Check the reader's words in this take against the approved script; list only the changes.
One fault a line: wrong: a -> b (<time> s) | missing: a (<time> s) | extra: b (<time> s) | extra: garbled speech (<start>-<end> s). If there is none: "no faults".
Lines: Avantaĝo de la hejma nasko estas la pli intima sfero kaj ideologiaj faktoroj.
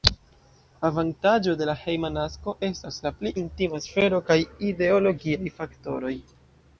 no faults